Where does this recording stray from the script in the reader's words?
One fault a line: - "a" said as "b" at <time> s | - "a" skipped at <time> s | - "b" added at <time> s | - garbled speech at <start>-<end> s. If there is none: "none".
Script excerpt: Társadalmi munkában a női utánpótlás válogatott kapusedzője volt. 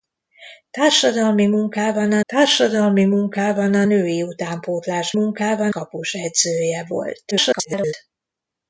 - "társadalmi munkában a" added at 2.3 s
- "válogatott" said as "munkában" at 5.1 s
- garbled speech at 7.3-7.9 s